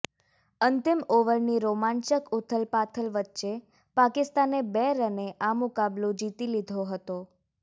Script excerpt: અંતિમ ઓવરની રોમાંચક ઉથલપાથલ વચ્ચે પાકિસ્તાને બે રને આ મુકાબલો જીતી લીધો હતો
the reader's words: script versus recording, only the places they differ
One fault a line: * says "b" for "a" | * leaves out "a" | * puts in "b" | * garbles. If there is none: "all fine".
all fine